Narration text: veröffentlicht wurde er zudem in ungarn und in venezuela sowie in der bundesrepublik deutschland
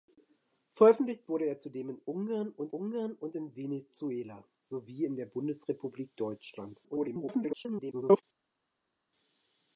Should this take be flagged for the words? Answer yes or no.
yes